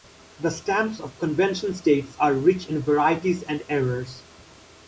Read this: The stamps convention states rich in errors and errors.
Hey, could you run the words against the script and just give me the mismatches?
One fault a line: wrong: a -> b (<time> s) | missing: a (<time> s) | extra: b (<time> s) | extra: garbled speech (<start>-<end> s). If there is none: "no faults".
extra: of (1.0 s)
extra: are (2.2 s)
wrong: errors -> varieties (2.8 s)